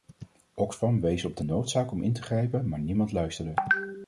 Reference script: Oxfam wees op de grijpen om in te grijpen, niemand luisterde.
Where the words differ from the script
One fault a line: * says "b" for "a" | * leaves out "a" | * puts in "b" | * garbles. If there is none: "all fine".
* says "noodzaak" for "grijpen"
* puts in "maar"